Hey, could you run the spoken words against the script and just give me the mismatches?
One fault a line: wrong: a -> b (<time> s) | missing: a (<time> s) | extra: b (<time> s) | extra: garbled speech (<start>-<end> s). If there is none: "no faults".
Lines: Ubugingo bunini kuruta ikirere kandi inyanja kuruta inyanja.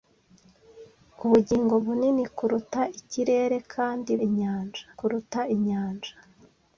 no faults